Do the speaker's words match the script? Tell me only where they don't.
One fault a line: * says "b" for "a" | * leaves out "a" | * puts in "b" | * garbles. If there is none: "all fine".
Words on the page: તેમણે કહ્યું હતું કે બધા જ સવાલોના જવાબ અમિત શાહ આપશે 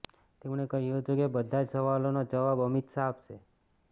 all fine